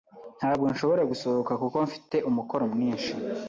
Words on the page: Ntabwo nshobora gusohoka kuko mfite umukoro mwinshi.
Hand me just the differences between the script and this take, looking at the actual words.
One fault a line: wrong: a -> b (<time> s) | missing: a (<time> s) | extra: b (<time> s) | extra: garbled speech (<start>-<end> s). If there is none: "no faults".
no faults